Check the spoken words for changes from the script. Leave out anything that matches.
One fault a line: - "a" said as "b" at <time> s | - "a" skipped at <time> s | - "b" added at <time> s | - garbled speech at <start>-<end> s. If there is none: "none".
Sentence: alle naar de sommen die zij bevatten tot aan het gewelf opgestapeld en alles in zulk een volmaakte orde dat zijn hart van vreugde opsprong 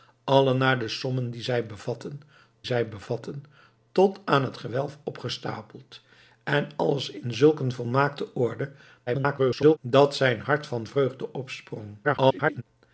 - "zij bevatten" added at 2.6 s
- garbled speech at 9.1-9.8 s
- garbled speech at 12.0-12.6 s